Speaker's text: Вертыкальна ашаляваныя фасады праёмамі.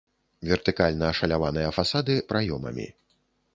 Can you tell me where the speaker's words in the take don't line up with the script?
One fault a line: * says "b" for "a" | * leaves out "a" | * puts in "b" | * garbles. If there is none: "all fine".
all fine